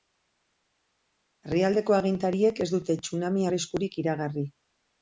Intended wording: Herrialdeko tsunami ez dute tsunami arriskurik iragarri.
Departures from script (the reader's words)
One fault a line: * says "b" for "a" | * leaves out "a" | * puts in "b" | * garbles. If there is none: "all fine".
* says "agintariek" for "tsunami"